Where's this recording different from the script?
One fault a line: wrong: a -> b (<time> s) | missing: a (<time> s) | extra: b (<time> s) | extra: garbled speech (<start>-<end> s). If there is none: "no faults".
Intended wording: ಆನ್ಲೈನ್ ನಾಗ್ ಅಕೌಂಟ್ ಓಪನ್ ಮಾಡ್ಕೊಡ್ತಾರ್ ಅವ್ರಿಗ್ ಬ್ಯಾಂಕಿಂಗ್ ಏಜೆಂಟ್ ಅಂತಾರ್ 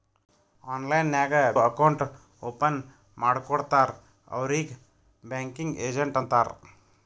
no faults